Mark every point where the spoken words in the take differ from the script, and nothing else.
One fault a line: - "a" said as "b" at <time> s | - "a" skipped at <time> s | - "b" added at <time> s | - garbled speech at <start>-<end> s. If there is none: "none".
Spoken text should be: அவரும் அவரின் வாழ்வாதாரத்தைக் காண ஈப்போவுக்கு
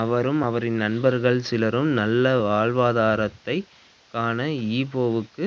- "நண்பர்கள் சிலரும் நல்ல" added at 0.8 s